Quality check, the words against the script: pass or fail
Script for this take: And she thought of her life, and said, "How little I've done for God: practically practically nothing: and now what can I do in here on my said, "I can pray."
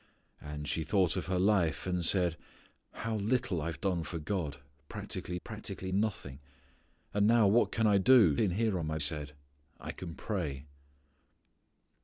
pass